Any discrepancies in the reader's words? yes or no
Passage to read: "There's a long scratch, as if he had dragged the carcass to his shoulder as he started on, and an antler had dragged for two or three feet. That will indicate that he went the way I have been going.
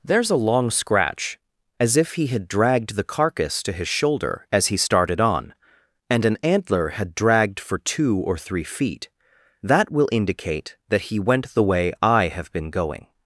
no